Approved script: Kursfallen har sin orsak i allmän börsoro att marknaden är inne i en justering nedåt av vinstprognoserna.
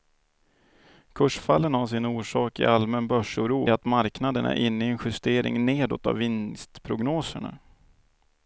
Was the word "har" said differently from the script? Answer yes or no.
no